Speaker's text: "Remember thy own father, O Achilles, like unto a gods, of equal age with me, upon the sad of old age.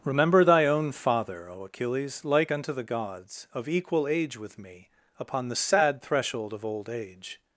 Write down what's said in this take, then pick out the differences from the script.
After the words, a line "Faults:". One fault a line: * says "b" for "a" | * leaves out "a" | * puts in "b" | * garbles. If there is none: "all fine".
"Remember thy own father, O Achilles, like unto the gods, of equal age with me, upon the sad threshold of old age.
Faults:
* says "the" for "a"
* puts in "threshold"